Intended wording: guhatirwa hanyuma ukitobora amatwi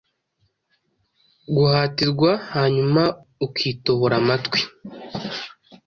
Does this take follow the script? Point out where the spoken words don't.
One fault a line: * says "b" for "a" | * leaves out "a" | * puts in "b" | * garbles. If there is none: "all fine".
all fine